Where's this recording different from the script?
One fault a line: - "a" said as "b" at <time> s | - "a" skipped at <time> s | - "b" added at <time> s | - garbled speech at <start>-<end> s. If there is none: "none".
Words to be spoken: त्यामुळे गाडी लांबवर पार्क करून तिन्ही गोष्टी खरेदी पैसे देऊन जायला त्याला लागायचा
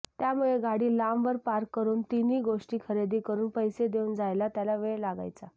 - "करून" added at 3.2 s
- "वेळ" added at 4.8 s